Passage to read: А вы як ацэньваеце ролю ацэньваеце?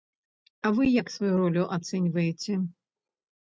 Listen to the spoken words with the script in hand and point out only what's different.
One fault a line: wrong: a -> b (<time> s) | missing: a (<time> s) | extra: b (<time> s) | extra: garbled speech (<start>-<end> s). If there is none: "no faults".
wrong: ацэньваеце -> сваю (1.2 s)